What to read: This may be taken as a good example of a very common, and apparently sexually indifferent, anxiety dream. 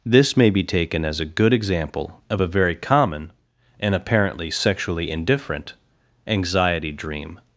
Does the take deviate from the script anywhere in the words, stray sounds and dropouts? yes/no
no